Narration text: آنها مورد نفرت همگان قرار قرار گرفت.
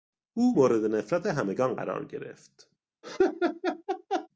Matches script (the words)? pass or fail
fail